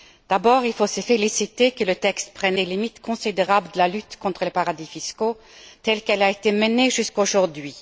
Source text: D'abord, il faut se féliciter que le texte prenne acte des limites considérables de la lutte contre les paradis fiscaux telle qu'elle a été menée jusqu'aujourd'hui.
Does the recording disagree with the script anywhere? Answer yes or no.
yes